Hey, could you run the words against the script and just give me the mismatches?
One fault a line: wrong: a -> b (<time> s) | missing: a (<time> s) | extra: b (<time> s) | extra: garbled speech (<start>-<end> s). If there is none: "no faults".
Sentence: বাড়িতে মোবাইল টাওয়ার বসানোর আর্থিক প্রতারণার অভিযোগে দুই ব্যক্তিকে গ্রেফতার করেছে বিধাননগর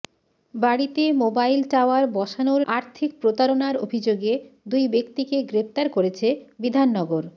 no faults